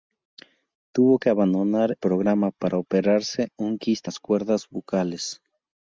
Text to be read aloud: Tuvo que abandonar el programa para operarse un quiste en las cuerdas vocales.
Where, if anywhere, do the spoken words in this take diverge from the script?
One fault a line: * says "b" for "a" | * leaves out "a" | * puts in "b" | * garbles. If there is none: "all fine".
* leaves out "el"
* leaves out "en"